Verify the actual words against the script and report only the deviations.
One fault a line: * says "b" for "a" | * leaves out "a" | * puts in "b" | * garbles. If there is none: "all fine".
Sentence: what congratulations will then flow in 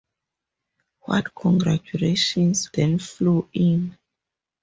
* leaves out "will"